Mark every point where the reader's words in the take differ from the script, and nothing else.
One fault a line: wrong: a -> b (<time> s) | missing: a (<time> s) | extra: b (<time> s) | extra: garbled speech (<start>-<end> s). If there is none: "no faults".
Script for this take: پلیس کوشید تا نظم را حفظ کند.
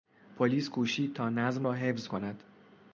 no faults